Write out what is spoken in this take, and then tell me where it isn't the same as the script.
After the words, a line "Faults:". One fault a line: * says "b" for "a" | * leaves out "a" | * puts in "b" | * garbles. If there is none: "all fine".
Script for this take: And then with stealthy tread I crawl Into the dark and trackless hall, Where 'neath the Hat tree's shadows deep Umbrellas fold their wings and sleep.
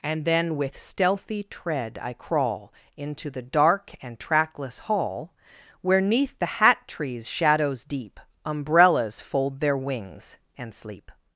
And then with stealthy tread I crawl Into the dark and trackless hall, Where 'neath the Hat tree's shadows deep Umbrellas fold their wings and sleep.
Faults:
all fine